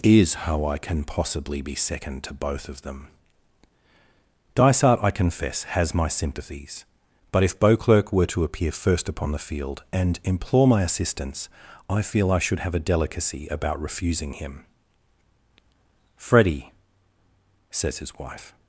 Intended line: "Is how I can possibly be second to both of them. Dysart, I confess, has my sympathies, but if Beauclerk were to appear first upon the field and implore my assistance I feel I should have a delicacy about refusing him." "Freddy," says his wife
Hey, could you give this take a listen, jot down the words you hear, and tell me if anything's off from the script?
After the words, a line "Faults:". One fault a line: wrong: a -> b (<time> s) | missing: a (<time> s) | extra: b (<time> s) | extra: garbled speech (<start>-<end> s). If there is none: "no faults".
"Is how I can possibly be second to both of them. Dysart, I confess, has my sympathies, but if Beauclerk were to appear first upon the field and implore my assistance I feel I should have a delicacy about refusing him." "Freddy," says his wife
Faults:
no faults